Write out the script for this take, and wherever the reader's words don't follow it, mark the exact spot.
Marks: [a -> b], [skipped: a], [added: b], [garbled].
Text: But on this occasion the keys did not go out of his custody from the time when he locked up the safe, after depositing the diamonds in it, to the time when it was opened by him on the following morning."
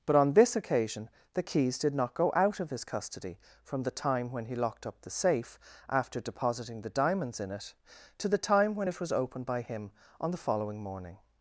But on this occasion the keys did not go out of his custody from the time when he locked up the safe, after depositing the diamonds in it, to the time when it was opened by him on the following morning."